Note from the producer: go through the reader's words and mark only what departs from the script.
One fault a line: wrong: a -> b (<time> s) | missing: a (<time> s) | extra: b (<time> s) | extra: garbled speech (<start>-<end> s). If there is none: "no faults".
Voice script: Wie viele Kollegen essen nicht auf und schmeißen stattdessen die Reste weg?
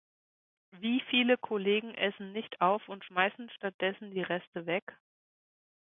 no faults